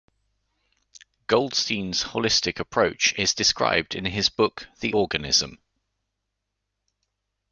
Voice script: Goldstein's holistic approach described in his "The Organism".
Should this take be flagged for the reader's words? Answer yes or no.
yes